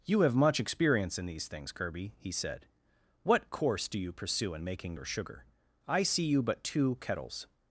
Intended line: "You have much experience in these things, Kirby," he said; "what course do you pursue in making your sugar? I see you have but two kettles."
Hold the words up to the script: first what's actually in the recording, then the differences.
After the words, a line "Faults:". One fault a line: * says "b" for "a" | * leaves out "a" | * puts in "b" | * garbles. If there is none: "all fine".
"You have much experience in these things, Kirby," he said; "what course do you pursue in making your sugar? I see you but two kettles."
Faults:
* leaves out "have"